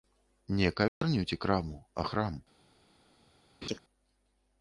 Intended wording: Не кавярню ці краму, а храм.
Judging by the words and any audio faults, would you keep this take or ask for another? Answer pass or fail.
fail